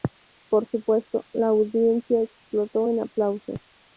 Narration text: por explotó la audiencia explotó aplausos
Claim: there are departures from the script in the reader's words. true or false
true